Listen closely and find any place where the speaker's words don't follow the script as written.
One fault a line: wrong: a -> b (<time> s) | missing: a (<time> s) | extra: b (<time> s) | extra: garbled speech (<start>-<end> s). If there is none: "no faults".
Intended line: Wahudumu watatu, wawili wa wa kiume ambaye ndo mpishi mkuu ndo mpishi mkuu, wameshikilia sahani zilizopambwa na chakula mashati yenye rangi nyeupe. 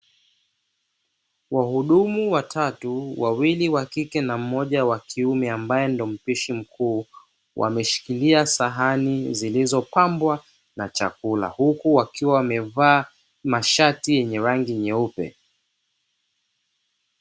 extra: kike na mmoja (3.9 s)
missing: ndo mpishi mkuu (7.0 s)
extra: huku wakiwa wamevaa (11.5 s)